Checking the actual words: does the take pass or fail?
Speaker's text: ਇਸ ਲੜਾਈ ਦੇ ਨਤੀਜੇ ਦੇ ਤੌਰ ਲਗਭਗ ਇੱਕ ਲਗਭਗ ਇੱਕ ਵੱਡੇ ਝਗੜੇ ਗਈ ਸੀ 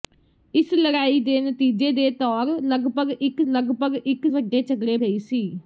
pass